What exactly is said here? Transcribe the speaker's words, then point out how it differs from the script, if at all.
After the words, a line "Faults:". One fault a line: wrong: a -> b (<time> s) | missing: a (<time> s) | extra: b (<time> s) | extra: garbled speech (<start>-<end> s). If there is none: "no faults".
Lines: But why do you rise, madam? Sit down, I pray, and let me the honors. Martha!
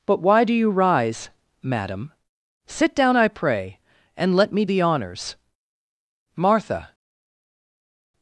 But why do you rise, madam? Sit down, I pray, and let me the honors. Martha!
Faults:
no faults